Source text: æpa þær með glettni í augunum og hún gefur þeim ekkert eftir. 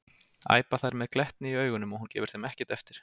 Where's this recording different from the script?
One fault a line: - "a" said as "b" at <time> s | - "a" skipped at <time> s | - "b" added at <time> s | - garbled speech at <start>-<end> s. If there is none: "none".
none